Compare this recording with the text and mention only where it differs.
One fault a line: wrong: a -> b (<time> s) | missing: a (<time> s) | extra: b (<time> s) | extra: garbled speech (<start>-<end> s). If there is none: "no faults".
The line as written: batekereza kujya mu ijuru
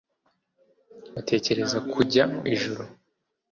missing: mu (2.2 s)